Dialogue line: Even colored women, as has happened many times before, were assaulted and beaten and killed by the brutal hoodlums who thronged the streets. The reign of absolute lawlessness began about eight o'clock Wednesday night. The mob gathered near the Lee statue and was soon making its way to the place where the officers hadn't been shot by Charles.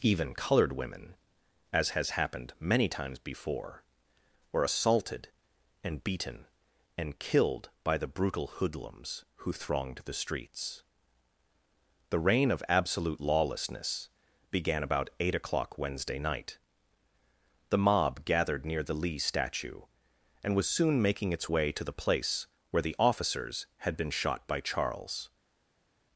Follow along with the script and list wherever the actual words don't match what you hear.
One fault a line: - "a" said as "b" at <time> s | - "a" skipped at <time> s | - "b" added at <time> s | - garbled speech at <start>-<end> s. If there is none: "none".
- "hadn't" said as "had" at 23.8 s